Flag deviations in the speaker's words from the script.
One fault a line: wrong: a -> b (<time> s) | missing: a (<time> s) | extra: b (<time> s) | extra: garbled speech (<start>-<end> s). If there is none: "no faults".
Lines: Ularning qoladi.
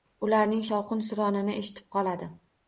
extra: shovqin suronini eshitib (0.7 s)